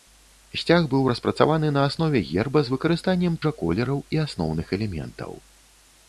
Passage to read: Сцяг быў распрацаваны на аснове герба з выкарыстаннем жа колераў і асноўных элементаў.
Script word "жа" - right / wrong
right